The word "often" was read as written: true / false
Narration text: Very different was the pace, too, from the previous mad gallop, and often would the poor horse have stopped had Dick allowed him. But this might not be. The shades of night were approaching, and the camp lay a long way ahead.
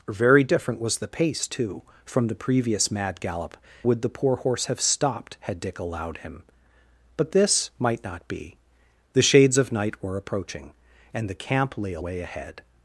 false